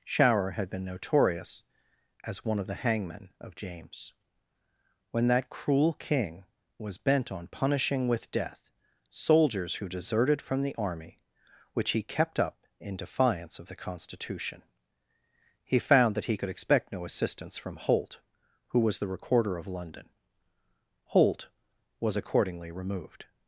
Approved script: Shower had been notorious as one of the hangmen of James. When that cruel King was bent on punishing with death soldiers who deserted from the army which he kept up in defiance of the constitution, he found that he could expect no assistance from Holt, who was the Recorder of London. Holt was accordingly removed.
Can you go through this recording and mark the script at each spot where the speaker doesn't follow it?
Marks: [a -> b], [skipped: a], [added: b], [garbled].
Shower had been notorious as one of the hangmen of James. When that cruel King was bent on punishing with death soldiers who deserted from the army which he kept up in defiance of the constitution, he found that he could expect no assistance from Holt, who was the Recorder of London. Holt was accordingly removed.